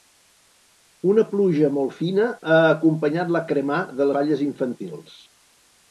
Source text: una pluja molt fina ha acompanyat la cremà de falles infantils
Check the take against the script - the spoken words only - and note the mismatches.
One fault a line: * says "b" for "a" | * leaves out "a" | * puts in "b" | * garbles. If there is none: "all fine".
all fine